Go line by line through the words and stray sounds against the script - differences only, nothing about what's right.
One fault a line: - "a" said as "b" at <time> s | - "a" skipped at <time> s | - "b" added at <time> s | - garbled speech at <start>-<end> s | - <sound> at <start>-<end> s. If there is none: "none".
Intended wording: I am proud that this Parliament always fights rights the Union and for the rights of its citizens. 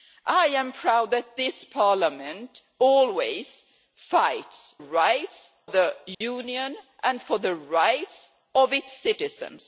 - dropout at 6.1-6.2 s